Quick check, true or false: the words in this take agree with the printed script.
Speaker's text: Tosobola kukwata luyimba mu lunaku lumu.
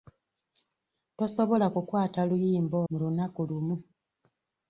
true